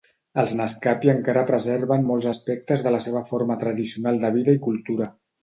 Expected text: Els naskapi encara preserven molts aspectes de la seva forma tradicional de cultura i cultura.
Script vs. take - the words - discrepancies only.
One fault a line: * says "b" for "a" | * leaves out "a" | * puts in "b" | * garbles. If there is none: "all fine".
* says "vida" for "cultura"